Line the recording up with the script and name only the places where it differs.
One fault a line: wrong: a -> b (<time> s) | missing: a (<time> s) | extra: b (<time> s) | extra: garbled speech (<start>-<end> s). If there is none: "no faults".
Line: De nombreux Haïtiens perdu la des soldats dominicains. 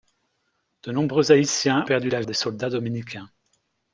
no faults